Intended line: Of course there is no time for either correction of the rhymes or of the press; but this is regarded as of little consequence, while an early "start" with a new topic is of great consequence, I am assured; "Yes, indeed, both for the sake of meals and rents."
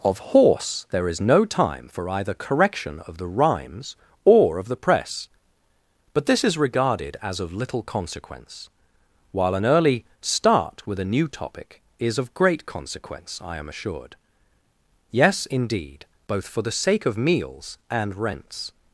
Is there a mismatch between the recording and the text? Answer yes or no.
yes